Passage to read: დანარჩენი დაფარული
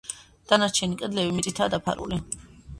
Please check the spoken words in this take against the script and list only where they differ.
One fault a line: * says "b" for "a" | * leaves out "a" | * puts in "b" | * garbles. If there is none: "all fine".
* puts in "კედლები მიწითაა"